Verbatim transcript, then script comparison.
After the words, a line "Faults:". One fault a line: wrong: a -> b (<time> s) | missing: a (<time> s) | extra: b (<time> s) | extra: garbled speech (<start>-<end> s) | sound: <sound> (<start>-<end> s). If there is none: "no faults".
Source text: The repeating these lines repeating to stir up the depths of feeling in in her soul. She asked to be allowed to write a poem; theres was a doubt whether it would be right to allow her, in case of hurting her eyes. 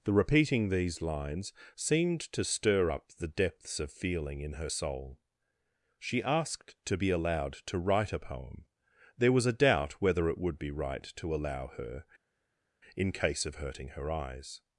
The repeating these lines seemed to stir up the depths of feeling in her soul. She asked to be allowed to write a poem; there was a doubt whether it would be right to allow her, in case of hurting her eyes.
Faults:
wrong: repeating -> seemed (1.8 s)
missing: in (4.5 s)
wrong: theres -> there (9.2 s)